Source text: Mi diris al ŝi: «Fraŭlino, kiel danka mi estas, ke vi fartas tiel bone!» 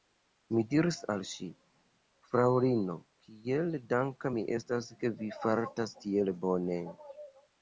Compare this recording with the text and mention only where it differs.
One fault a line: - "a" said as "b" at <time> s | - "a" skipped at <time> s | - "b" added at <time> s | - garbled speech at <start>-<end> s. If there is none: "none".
none